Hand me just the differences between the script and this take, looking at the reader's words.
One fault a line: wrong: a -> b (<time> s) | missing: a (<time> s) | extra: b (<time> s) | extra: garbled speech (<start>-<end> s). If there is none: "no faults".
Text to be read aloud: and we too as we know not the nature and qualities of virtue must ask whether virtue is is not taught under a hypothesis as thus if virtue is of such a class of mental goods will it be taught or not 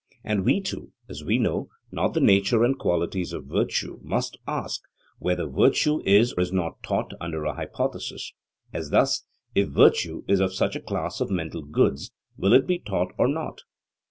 no faults